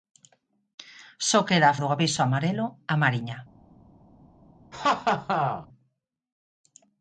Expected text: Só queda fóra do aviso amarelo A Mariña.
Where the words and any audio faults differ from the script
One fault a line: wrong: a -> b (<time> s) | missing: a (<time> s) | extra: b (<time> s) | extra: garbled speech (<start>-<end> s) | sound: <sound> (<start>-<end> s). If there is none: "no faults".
missing: fóra (1.8 s)
sound: laugh (4.7-5.7 s)